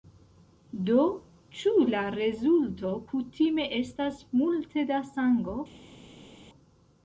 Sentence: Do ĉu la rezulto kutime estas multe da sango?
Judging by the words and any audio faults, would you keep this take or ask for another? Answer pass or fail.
pass